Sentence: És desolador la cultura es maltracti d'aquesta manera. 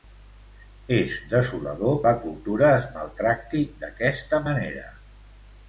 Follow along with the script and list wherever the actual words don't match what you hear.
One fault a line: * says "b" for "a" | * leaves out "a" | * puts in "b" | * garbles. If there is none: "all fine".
all fine